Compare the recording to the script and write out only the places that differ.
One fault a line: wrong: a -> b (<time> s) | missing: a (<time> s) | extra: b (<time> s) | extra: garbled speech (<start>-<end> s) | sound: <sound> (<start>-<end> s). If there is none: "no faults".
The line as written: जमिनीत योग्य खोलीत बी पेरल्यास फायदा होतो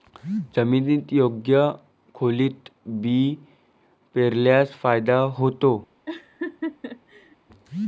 sound: laugh (6.1-7.4 s)